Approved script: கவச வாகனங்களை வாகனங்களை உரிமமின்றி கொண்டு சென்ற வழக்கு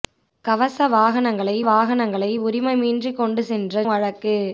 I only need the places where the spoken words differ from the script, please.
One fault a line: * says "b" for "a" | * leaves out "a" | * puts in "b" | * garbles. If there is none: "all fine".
all fine